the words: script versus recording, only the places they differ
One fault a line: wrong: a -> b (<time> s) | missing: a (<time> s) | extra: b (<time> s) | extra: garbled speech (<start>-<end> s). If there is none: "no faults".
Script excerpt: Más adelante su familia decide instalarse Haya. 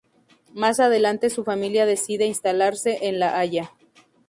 extra: en La (3.0 s)